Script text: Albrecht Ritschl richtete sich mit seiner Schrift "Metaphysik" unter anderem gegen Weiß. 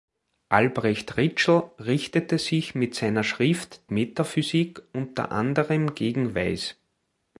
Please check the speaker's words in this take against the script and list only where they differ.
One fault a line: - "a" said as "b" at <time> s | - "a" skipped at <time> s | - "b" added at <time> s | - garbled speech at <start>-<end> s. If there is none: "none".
none